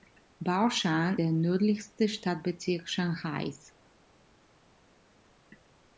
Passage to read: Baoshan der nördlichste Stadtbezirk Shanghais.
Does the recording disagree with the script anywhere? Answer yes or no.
no